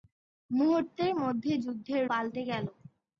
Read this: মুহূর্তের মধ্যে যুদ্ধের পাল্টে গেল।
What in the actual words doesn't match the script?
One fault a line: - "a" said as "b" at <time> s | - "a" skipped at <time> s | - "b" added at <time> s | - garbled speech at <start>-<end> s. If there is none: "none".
none